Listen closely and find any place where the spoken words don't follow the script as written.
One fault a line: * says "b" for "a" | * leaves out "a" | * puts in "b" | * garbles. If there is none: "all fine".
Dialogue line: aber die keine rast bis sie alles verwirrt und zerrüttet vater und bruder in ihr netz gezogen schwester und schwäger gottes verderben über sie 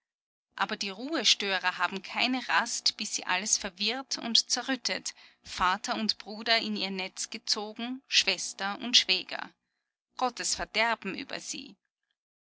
* puts in "ruhestörer haben"